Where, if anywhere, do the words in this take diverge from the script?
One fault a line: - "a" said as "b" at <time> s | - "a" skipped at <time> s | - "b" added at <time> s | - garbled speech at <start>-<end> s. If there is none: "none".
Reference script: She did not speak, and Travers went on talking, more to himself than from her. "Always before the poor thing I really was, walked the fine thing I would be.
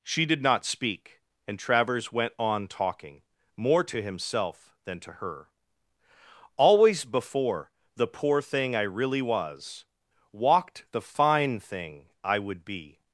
- "from" said as "to" at 5.0 s